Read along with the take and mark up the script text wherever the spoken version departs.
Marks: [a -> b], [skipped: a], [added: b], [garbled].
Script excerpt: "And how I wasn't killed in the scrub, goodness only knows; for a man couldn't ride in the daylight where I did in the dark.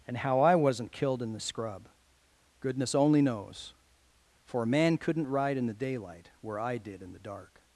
"And how I wasn't killed in the scrub, goodness only knows; for a man couldn't ride in the daylight where I did in the dark.